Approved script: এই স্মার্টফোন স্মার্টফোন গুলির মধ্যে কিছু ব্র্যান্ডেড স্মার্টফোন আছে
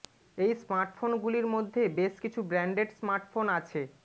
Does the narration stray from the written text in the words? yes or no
yes